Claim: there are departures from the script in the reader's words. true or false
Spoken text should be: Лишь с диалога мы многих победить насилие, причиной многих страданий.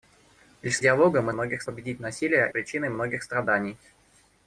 false